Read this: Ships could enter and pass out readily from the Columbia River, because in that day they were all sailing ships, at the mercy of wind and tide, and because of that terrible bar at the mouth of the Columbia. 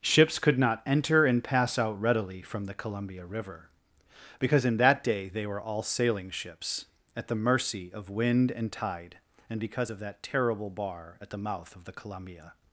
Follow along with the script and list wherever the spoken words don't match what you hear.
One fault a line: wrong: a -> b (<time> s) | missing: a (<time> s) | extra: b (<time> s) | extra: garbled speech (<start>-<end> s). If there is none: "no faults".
extra: not (0.6 s)